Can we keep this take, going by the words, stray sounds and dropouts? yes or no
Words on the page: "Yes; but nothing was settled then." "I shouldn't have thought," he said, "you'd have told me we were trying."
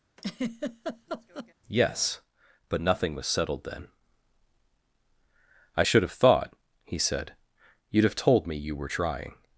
no